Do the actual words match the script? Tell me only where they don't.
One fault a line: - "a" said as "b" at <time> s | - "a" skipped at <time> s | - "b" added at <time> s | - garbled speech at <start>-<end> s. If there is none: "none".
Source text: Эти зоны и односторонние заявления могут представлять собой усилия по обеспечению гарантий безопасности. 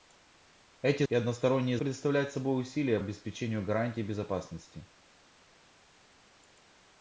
- "зоны" skipped at 1.0 s
- "заявления могут" skipped at 1.8 s
- "по" skipped at 3.0 s